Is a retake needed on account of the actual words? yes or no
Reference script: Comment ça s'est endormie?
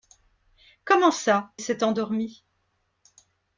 no